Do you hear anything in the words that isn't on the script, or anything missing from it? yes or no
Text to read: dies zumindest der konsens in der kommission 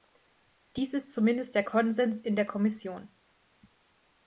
yes